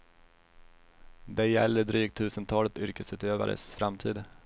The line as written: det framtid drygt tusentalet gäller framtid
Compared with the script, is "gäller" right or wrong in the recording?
wrong